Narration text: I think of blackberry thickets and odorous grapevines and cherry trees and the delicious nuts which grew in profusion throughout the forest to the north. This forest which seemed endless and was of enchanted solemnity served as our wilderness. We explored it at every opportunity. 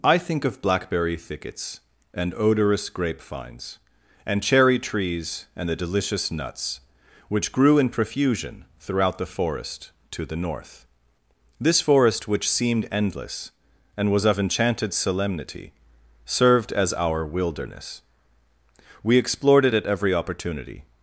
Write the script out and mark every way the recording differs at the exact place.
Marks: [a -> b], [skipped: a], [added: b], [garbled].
I think of blackberry thickets and odorous grapevines and cherry trees and the delicious nuts which grew in profusion throughout the forest to the north. This forest which seemed endless and was of enchanted solemnity served as our wilderness. We explored it at every opportunity.